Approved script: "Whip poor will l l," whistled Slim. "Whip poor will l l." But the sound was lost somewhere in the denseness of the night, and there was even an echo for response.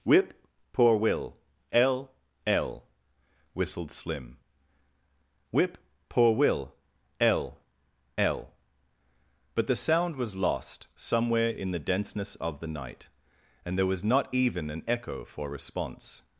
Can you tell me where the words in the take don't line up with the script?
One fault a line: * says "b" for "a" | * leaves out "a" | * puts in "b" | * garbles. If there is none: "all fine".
* puts in "not"